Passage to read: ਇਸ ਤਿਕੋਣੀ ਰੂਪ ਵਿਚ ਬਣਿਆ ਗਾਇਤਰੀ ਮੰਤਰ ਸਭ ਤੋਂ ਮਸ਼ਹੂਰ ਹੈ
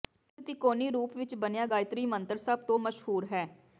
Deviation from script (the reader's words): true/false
false